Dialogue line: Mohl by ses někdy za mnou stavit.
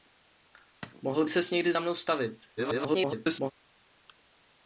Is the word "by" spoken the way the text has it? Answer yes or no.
no